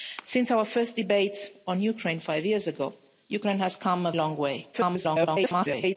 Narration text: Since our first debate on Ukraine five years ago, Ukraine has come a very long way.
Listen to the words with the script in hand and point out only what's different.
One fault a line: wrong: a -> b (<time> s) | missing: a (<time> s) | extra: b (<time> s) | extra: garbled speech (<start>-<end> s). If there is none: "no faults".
missing: very (4.1 s)
extra: garbled speech (4.7-6.0 s)